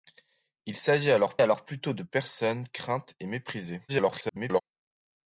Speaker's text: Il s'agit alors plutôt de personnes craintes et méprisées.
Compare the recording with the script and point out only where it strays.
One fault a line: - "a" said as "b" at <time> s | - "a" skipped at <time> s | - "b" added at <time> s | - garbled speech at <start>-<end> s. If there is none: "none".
- "alors" added at 1.4 s
- garbled speech at 3.9-4.6 s